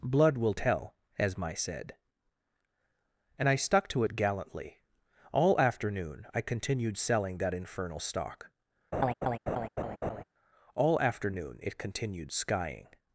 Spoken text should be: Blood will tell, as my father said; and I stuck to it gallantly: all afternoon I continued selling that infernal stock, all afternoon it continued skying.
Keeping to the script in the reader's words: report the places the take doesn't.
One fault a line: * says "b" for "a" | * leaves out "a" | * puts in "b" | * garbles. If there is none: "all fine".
* leaves out "father"